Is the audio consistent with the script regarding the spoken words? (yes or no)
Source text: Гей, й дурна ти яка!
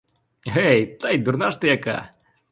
no